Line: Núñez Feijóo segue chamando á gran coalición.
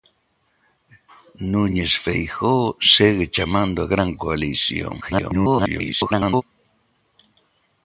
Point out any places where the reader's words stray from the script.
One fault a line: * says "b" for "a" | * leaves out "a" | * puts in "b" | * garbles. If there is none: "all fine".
* garbles